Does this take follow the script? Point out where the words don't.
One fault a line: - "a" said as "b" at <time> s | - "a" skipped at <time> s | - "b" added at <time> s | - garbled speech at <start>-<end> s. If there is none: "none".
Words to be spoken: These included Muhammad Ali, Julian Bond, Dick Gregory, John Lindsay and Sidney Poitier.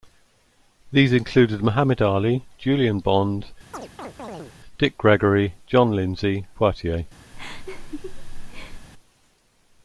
- "and Sidney" skipped at 6.5 s